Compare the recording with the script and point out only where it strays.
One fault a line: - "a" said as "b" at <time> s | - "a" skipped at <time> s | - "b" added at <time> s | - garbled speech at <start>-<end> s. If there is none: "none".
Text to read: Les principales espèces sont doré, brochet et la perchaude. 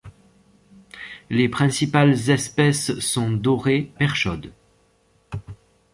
- "brochet et la" skipped at 3.9 s